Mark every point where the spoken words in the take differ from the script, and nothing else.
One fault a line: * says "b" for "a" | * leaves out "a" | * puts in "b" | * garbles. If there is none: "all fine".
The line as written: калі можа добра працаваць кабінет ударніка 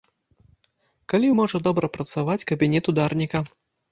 all fine